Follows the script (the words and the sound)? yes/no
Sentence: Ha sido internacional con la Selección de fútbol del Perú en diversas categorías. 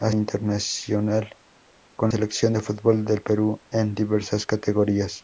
no